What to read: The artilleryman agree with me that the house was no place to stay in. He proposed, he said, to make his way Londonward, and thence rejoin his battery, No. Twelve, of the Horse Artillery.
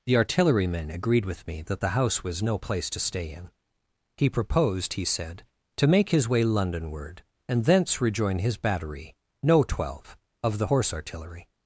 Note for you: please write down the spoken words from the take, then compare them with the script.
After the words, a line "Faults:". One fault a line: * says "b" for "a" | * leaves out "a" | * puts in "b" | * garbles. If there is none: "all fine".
The artilleryman agreed with me that the house was no place to stay in. He proposed, he said, to make his way Londonward, and thence rejoin his battery, No. Twelve, of the Horse Artillery.
Faults:
* says "agreed" for "agree"